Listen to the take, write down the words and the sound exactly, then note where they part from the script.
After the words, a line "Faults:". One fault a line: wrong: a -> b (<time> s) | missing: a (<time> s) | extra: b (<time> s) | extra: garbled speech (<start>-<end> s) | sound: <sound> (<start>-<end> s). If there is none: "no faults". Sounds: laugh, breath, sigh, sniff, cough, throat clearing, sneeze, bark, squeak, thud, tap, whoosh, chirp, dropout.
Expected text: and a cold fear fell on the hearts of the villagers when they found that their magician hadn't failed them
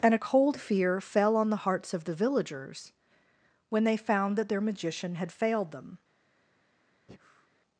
and a cold fear fell on the hearts of the villagers when they found that their magician had failed them
Faults:
wrong: hadn't -> had (5.2 s)
sound: breath (7.1-7.5 s)